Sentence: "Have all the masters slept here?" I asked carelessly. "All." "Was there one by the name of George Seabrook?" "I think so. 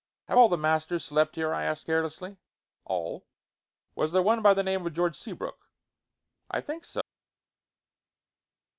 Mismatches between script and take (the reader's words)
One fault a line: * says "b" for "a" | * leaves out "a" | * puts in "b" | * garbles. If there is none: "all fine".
all fine